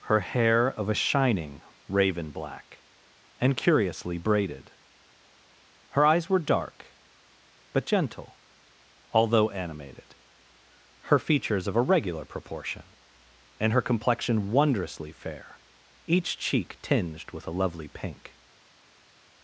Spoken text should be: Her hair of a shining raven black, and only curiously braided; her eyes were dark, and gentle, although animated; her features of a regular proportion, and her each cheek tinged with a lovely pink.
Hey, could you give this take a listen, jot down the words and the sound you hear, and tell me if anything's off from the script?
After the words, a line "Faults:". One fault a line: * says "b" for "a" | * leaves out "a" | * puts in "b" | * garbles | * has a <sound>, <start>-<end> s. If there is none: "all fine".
Her hair of a shining raven black, and curiously braided; her eyes were dark, but gentle, although animated; her features of a regular proportion, and her complexion wondrously fair, each cheek tinged with a lovely pink.
Faults:
* leaves out "only"
* says "but" for "and"
* puts in "complexion wondrously fair"